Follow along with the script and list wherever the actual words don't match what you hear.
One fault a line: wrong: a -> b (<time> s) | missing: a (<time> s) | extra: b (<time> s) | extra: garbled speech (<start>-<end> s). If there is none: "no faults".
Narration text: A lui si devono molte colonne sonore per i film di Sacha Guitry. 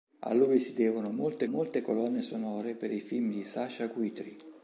extra: molte (1.5 s)